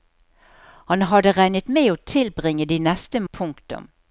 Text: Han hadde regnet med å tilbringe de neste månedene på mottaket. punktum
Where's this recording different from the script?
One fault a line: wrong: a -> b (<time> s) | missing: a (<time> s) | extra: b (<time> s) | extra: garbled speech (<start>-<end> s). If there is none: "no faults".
missing: månedene på mottaket (3.2 s)